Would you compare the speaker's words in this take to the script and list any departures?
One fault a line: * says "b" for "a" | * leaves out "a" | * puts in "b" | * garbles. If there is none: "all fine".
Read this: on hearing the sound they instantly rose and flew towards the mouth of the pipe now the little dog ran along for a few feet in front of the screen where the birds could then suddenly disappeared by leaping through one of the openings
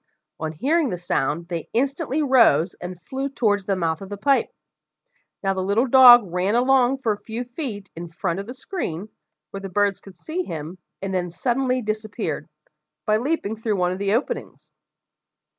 * puts in "see him and"